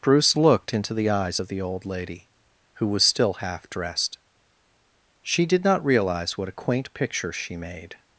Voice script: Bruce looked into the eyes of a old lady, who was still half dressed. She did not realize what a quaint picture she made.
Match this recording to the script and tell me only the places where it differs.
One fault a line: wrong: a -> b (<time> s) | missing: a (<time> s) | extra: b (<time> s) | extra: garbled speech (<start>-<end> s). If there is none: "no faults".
wrong: a -> the (1.5 s)